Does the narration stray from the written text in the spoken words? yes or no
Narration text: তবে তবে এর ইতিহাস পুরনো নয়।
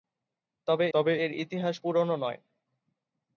no